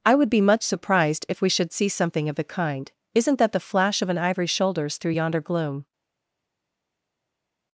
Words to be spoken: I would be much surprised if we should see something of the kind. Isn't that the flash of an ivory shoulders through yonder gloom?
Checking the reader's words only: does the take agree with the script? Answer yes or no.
yes